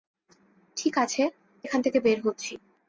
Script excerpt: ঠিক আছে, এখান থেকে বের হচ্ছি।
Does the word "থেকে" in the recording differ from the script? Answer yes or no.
no